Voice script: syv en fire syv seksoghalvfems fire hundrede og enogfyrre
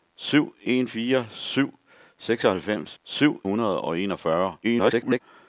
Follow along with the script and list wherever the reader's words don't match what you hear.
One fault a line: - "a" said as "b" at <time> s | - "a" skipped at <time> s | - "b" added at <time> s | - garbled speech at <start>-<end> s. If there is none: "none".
- "fire" said as "syv" at 3.0 s
- garbled speech at 4.6-5.2 s